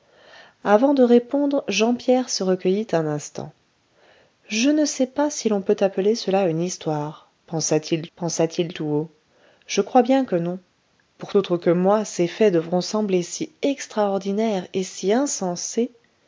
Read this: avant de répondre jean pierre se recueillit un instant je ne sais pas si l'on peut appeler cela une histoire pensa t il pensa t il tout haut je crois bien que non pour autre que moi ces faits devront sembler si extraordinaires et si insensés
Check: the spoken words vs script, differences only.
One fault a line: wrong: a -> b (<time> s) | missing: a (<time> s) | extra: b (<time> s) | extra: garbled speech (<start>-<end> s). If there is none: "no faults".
no faults